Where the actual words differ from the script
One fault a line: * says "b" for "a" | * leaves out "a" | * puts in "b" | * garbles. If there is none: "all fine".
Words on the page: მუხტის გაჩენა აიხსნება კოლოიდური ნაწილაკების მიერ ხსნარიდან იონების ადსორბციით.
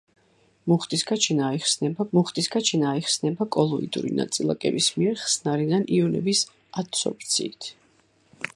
* puts in "მუხტის გაჩენა აიხსნება"